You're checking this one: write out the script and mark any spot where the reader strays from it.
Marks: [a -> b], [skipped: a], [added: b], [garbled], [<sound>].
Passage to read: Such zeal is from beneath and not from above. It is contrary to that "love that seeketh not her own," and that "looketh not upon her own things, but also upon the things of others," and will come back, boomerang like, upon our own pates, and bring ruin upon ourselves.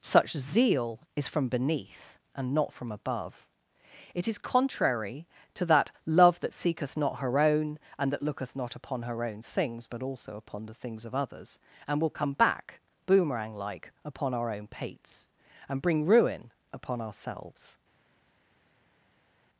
Such zeal is from beneath and not from above. It is contrary to that "love that seeketh not her own," and that "looketh not upon her own things, but also upon the things of others," and will come back, boomerang like, upon our own pates, and bring ruin upon ourselves.